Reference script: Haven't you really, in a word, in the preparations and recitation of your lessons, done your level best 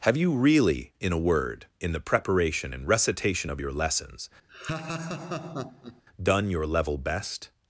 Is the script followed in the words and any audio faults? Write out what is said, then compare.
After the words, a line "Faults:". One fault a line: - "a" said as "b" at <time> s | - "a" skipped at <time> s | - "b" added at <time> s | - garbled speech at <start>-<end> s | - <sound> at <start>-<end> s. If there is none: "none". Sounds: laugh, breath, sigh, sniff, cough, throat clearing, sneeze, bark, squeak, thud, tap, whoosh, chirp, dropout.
Have you really, in a word, in the preparation and recitation of your lessons, done your level best
Faults:
- "Haven't" said as "Have" at 0.1 s
- "preparations" said as "preparation" at 2.0 s
- laugh at 4.5-6.0 s